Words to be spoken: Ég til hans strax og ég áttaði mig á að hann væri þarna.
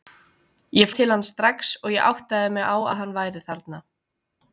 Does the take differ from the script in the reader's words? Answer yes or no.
no